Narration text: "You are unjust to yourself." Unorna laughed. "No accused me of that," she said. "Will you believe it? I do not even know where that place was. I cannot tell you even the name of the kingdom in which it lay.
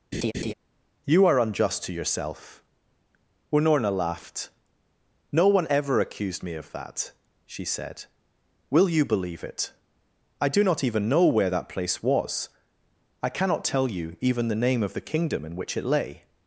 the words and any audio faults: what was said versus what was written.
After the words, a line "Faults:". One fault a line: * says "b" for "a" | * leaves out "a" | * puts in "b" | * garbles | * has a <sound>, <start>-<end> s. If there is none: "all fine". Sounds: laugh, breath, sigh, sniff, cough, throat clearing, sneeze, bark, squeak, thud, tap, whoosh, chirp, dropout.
"You are unjust to yourself." Unorna laughed. "No one ever accused me of that," she said. "Will you believe it? I do not even know where that place was. I cannot tell you even the name of the kingdom in which it lay.
Faults:
* has a laugh, 0.1-0.5 s
* puts in "one ever"